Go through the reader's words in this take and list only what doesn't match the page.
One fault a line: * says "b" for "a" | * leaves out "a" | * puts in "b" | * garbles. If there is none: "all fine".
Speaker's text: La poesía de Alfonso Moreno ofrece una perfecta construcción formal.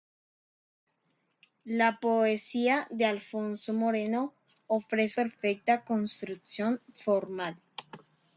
* leaves out "una"